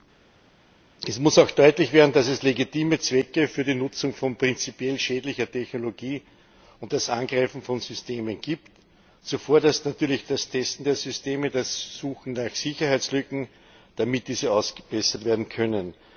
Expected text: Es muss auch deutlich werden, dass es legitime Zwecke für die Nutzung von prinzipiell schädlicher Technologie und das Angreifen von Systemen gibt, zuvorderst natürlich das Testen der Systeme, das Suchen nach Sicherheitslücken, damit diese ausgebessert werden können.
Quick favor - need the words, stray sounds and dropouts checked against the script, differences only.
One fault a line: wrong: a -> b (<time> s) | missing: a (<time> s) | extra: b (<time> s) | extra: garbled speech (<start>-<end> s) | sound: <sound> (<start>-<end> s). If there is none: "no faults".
no faults